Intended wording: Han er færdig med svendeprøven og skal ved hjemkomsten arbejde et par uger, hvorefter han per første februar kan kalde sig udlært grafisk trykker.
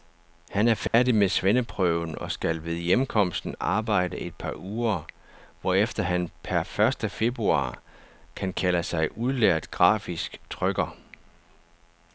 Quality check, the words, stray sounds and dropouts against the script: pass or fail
fail